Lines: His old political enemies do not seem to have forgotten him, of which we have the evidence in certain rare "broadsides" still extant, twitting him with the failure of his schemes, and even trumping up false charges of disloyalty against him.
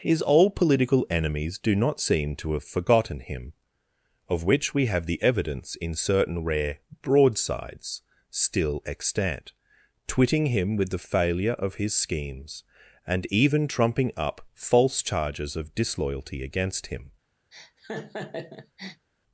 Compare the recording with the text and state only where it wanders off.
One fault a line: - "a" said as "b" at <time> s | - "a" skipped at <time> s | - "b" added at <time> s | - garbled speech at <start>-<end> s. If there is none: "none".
none